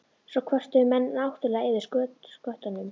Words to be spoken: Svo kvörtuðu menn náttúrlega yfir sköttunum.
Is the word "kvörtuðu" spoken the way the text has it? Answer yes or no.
yes